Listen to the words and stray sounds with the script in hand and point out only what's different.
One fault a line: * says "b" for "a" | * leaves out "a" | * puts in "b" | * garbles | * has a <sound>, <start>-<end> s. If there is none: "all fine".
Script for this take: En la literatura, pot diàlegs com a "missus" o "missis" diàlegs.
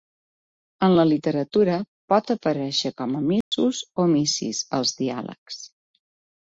* says "aparèixer" for "diàlegs"
* has a dropout, 3.4-3.5 s
* puts in "als"